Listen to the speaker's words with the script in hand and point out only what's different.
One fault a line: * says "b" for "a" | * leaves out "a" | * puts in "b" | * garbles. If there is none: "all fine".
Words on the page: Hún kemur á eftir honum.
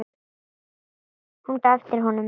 * leaves out "kemur"